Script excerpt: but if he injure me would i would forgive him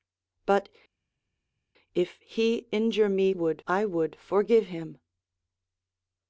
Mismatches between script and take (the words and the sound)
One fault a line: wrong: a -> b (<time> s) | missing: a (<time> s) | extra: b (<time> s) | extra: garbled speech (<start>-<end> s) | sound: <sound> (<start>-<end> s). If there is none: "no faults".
no faults